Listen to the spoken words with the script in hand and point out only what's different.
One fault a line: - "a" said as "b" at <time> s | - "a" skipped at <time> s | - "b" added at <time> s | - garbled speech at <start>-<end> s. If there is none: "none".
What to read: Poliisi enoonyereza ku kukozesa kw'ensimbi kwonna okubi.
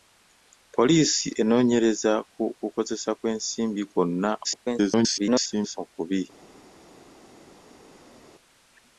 - garbled speech at 4.4-5.8 s